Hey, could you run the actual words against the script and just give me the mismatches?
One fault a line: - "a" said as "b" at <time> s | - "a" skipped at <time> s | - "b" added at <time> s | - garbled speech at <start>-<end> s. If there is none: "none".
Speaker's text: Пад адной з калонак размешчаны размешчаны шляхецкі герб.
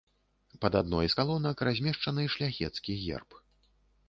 - "размешчаны" skipped at 2.3 s